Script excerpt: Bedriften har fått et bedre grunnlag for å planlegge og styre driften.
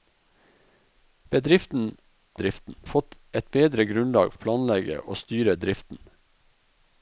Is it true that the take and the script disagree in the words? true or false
true